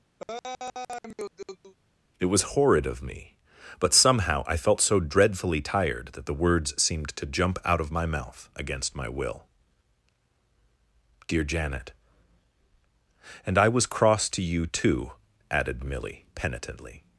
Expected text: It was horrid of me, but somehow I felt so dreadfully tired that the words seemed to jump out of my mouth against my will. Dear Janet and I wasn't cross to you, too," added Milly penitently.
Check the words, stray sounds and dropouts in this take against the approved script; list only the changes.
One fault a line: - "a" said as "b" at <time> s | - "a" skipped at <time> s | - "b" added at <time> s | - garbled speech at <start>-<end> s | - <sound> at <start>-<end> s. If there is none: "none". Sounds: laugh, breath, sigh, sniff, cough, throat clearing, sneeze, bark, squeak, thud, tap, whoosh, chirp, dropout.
- laugh at 0.2-1.7 s
- "wasn't" said as "was" at 13.7 s